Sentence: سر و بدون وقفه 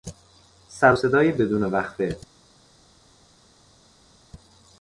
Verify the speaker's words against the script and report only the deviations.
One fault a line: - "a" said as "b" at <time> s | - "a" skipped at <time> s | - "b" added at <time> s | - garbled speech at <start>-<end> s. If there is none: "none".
- "صدای" added at 0.9 s